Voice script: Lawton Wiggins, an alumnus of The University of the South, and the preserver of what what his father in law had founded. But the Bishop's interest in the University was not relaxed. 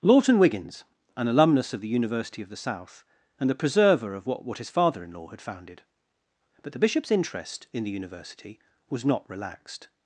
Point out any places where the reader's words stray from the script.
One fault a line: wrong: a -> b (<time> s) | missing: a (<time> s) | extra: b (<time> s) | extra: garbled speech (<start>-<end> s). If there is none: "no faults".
no faults